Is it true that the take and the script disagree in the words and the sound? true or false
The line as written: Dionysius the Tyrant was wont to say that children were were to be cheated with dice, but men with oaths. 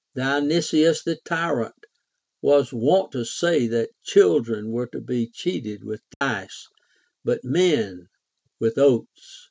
true